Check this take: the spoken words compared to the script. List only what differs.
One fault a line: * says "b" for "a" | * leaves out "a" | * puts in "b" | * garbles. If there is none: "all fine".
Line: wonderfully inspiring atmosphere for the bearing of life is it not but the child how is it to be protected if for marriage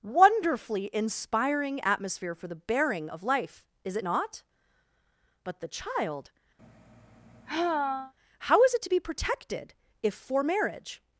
all fine